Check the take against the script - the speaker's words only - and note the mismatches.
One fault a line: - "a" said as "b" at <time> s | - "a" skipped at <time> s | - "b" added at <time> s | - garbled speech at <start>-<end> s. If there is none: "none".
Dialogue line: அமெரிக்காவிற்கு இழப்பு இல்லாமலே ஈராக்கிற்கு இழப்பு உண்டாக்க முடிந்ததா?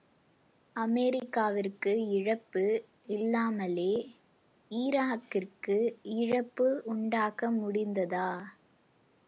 none